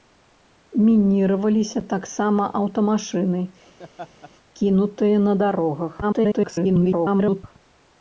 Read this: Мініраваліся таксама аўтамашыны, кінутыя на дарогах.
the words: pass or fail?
fail